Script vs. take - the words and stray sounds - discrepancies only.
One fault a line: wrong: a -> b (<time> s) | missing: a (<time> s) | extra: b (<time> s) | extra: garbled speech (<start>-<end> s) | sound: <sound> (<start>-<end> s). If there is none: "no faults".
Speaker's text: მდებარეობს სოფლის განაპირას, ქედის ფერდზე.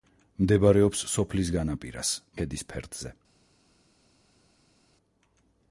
no faults